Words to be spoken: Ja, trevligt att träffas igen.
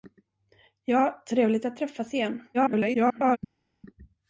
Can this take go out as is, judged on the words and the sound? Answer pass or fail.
fail